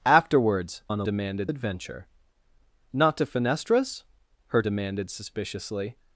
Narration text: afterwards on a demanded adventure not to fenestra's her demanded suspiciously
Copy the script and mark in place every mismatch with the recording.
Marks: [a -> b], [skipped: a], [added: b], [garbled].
afterwards on a demanded adventure not to fenestra's her demanded suspiciously